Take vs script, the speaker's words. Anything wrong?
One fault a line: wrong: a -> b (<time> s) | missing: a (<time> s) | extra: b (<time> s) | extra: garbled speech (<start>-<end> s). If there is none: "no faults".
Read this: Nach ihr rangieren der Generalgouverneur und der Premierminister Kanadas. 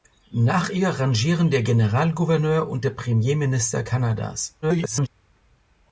extra: garbled speech (4.6-5.1 s)